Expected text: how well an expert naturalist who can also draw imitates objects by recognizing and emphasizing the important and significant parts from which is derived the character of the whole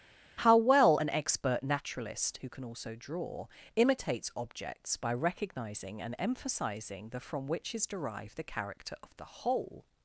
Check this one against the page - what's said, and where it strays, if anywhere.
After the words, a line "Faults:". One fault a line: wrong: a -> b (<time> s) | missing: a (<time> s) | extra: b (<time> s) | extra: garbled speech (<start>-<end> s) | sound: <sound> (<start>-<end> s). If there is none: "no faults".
how well an expert naturalist who can also draw imitates objects by recognizing and emphasizing the from which is derived the character of the whole
Faults:
missing: important and significant parts (7.2 s)